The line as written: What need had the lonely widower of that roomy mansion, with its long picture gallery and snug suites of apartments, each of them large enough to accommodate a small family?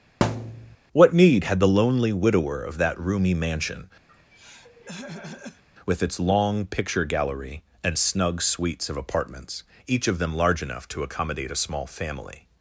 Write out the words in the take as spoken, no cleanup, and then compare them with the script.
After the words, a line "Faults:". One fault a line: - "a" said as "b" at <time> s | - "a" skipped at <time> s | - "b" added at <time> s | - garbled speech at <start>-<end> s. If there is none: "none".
What need had the lonely widower of that roomy mansion, with its long picture gallery and snug suites of apartments, each of them large enough to accommodate a small family?
Faults:
none